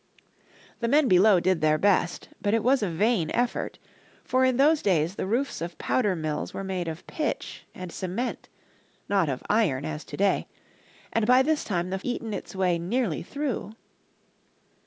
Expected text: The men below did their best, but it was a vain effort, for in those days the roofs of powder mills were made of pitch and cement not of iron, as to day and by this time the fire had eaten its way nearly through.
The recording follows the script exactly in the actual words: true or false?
false